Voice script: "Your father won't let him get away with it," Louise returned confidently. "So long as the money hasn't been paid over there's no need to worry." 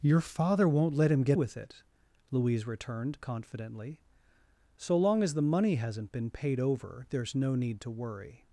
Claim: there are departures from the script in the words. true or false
true